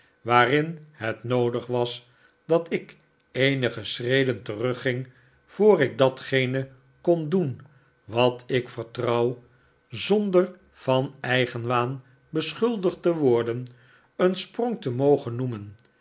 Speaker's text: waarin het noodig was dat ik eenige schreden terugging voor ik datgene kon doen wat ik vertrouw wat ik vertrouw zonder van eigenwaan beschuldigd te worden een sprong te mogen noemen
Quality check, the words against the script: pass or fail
fail